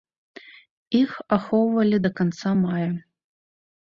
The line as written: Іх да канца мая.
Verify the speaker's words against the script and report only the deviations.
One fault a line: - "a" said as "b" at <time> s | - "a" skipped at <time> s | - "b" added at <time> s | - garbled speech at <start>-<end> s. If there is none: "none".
- "ахоўвалі" added at 1.4 s